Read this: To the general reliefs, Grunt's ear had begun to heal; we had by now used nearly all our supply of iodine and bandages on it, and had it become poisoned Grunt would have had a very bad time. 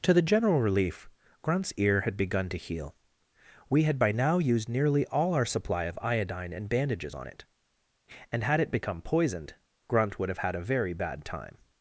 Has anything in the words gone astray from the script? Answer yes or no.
yes